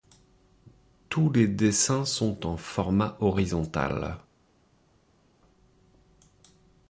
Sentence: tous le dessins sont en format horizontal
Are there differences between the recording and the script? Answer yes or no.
yes